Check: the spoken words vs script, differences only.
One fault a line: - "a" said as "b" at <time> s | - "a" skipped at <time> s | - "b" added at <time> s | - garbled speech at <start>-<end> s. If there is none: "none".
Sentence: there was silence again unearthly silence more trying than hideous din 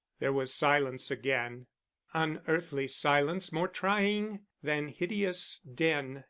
none